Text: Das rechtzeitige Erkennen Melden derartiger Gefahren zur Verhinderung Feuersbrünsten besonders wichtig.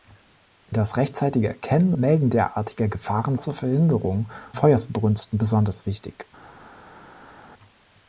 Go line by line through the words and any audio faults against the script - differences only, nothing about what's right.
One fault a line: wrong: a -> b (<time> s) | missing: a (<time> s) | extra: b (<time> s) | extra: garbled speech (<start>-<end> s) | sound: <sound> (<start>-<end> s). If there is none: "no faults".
no faults